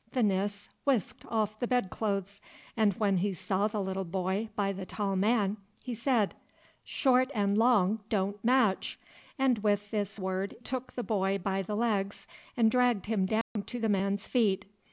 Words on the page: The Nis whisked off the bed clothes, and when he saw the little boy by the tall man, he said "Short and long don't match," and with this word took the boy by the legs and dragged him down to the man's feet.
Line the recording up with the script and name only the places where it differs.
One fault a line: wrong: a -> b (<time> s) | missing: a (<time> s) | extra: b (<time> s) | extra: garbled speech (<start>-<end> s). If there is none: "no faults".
no faults